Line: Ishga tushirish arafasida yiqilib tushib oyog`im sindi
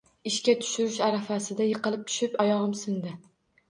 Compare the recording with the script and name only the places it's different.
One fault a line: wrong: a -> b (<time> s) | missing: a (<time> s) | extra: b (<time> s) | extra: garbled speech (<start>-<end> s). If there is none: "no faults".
no faults